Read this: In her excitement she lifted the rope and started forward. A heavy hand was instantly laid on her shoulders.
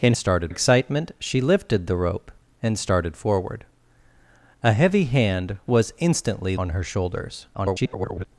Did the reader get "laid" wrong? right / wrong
wrong